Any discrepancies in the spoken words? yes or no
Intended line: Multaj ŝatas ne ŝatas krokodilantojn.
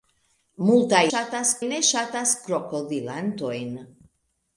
no